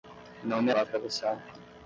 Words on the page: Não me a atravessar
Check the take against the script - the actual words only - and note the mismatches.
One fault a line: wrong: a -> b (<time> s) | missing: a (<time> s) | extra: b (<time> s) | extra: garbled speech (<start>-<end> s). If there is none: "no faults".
no faults